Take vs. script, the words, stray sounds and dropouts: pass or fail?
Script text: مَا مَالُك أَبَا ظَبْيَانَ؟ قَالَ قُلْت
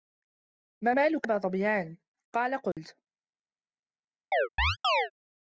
fail